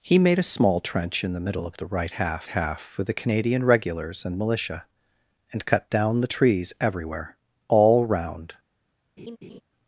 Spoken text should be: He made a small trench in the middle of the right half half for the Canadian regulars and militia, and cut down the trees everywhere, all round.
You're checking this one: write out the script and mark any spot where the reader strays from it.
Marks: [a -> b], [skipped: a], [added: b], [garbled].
He made a small trench in the middle of the right half half for the Canadian regulars and militia, and cut down the trees everywhere, all round.